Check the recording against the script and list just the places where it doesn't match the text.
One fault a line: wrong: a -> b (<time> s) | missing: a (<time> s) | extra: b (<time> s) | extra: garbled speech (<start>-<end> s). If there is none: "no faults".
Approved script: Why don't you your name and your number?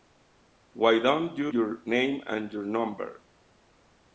no faults